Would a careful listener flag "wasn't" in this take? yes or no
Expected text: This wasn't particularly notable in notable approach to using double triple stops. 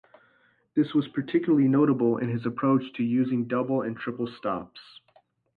yes